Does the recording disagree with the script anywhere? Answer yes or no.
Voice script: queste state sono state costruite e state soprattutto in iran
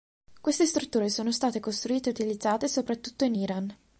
yes